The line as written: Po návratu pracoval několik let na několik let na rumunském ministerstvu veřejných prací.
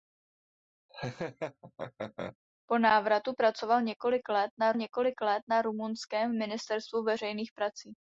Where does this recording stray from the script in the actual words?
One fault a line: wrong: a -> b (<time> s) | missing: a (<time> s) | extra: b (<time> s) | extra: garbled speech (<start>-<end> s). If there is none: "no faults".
no faults